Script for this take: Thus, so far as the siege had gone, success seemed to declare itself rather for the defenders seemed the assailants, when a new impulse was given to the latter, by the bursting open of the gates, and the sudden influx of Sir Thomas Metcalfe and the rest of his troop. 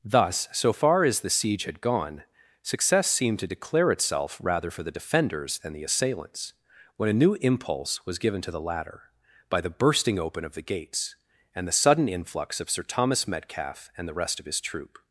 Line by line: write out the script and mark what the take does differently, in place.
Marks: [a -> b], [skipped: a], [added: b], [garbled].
Thus, so far as the siege had gone, success seemed to declare itself rather for the defenders [seemed -> than] the assailants, when a new impulse was given to the latter, by the bursting open of the gates, and the sudden influx of Sir Thomas Metcalfe and the rest of his troop.